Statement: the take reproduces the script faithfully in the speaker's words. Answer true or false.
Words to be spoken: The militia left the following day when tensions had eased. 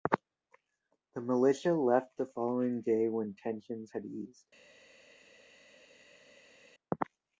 true